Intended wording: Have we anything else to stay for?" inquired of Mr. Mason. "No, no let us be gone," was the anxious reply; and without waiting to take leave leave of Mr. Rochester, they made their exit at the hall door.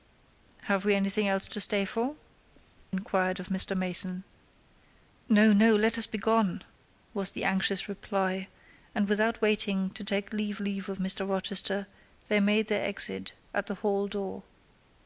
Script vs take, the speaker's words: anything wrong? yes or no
no